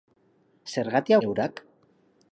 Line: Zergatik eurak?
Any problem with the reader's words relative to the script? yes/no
no